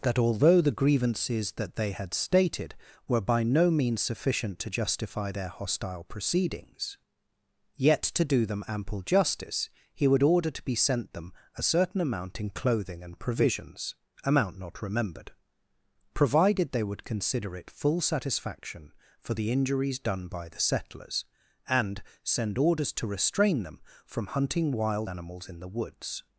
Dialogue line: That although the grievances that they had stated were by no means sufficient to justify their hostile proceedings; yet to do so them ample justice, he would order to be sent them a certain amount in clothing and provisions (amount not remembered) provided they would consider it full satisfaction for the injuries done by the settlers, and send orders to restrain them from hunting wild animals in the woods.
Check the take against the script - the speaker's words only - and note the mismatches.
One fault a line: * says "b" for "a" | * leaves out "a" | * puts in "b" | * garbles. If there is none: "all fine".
* leaves out "so"